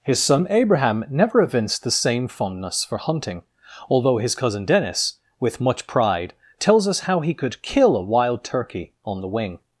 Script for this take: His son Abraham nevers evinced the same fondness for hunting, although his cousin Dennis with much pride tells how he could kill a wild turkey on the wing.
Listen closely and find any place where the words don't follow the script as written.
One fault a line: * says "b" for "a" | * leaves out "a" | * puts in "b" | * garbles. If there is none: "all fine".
* says "never" for "nevers"
* puts in "us"